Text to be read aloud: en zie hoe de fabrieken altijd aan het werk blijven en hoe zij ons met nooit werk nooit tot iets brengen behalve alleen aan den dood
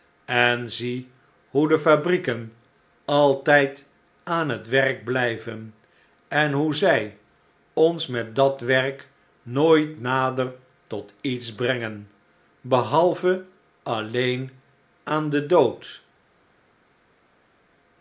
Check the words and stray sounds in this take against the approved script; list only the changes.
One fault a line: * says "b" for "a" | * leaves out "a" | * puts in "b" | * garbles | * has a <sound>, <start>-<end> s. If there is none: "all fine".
* says "dat" for "nooit"
* puts in "nader"